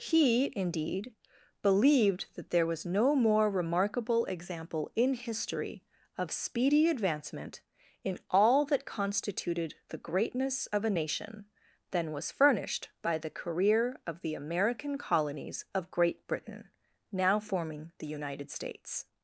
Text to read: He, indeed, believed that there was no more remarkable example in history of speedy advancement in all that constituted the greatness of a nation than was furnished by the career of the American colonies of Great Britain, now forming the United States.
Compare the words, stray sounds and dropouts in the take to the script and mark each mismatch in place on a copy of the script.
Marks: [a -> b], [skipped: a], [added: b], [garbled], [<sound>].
He, indeed, believed that there was no more remarkable example in history of speedy advancement in all that constituted the greatness of a nation than was furnished by the career of the American colonies of Great Britain, now forming the United States.